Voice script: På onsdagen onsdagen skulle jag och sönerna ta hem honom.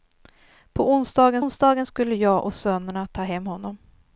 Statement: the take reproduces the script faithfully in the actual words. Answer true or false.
true